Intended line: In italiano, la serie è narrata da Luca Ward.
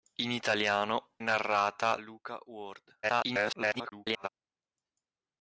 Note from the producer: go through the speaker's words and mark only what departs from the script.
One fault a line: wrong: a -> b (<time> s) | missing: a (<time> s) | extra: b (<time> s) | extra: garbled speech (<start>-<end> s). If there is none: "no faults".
missing: la serie (1.2 s)
missing: da (2.0 s)
extra: garbled speech (3.0-4.3 s)